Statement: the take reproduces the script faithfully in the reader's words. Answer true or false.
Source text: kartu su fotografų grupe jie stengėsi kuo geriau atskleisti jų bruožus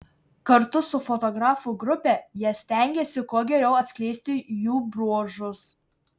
true